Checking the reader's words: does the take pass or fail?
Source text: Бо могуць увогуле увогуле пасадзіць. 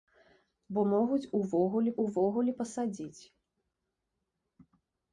pass